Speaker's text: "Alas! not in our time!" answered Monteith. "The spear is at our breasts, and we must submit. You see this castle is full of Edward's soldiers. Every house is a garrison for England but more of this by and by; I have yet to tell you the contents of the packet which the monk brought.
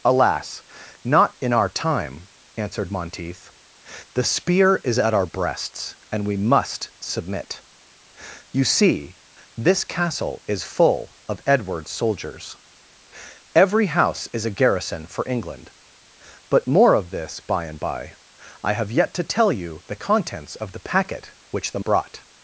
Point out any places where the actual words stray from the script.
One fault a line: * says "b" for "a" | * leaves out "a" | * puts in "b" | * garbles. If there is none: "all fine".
* leaves out "monk"